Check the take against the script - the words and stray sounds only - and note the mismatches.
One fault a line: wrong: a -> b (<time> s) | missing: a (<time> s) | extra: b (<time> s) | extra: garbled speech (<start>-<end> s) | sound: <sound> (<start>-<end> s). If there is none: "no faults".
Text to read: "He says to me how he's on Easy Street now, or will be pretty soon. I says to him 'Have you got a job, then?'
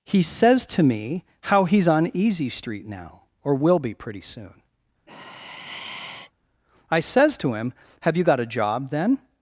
sound: sigh (5.1-6.3 s)